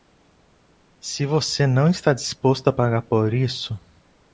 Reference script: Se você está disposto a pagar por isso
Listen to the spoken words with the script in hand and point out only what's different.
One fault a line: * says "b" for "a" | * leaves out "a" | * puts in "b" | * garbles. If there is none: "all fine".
* puts in "não"